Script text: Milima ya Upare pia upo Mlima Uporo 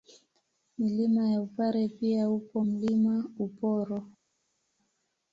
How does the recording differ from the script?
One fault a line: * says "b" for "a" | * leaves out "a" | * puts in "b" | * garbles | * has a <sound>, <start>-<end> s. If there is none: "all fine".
all fine